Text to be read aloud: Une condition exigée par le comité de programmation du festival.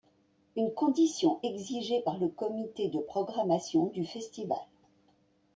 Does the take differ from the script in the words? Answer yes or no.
no